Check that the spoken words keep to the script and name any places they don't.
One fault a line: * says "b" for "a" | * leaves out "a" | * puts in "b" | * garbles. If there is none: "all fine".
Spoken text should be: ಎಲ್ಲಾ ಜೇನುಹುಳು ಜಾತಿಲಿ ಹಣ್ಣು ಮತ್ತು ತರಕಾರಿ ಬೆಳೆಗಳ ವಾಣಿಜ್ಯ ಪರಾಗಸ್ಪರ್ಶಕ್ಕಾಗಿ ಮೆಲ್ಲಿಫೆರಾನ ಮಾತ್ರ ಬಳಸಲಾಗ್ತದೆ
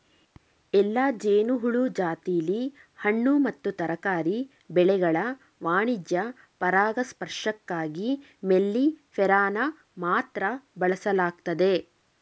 all fine